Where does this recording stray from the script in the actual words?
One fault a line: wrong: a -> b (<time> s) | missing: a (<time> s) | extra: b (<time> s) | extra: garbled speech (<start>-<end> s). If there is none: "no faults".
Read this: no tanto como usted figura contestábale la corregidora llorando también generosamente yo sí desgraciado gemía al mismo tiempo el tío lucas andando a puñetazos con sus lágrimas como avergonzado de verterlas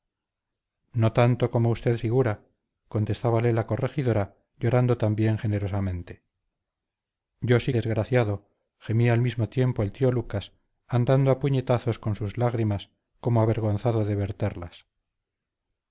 no faults